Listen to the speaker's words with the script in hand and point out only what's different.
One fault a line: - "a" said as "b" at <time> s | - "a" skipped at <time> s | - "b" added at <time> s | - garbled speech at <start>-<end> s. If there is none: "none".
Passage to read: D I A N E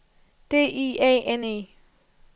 none